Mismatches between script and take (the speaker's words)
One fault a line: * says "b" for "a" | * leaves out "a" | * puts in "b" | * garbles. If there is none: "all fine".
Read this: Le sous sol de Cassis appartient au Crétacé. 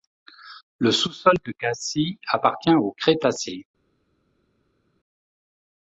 all fine